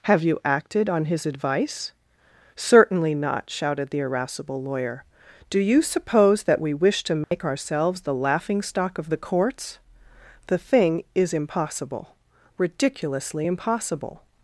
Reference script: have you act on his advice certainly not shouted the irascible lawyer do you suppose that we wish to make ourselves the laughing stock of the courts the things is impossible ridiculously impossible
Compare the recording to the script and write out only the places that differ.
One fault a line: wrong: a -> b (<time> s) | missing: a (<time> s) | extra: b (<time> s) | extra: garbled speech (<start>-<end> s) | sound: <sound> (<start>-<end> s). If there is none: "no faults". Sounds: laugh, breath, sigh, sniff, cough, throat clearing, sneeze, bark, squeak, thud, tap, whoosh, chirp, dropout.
wrong: act -> acted (0.4 s)
sound: dropout (7.2-7.3 s)
wrong: things -> thing (10.6 s)